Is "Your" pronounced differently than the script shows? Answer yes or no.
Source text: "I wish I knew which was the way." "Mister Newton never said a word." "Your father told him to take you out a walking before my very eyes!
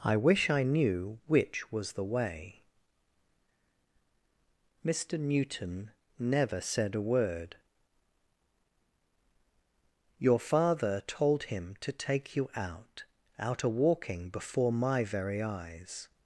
no